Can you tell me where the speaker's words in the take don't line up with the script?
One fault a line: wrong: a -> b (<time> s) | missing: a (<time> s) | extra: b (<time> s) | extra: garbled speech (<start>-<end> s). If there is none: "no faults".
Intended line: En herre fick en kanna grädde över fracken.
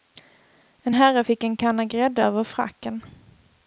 no faults